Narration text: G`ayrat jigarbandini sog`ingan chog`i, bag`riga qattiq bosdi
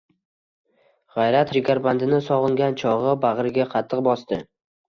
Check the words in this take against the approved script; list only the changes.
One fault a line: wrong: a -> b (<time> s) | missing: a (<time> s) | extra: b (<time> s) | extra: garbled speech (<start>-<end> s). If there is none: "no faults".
no faults